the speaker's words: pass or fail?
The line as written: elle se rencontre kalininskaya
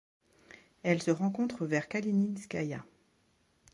fail